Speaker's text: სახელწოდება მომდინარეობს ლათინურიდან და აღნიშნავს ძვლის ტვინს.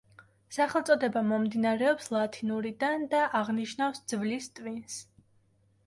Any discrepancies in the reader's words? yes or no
no